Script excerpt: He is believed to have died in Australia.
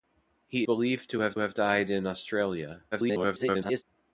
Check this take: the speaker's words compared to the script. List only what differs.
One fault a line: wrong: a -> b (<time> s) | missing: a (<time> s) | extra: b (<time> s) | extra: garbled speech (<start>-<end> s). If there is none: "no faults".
missing: is (0.7 s)
extra: have (1.4 s)
extra: garbled speech (2.9-3.8 s)